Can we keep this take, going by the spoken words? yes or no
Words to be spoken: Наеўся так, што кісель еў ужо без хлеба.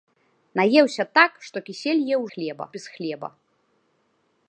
no